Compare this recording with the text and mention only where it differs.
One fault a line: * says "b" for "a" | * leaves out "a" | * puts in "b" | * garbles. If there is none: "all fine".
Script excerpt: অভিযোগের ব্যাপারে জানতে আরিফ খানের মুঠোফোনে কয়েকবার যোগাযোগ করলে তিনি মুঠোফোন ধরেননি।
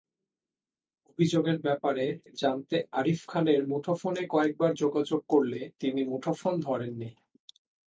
all fine